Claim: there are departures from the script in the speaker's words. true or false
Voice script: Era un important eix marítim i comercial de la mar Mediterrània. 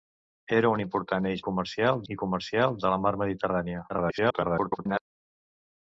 true